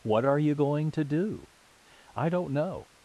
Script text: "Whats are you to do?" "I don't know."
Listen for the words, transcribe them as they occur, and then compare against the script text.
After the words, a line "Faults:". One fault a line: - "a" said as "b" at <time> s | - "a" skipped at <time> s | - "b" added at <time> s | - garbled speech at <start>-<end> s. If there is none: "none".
"What are you going to do?" "I don't know."
Faults:
- "Whats" said as "What" at 0.0 s
- "going" added at 0.5 s